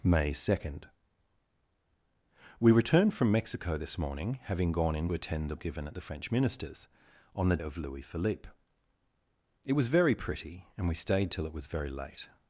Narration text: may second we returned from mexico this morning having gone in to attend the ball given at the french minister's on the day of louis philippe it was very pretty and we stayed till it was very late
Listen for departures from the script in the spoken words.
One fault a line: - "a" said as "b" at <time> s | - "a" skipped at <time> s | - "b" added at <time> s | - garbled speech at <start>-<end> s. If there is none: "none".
- "to" skipped at 5.1 s
- "ball" skipped at 5.6 s
- "day" skipped at 7.6 s